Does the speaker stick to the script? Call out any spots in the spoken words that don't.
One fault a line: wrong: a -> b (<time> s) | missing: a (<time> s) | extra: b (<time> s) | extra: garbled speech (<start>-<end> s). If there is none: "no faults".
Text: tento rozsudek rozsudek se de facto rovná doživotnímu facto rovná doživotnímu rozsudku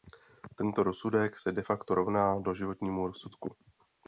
missing: rozsudek (1.4 s)
missing: facto rovná doživotnímu (3.1 s)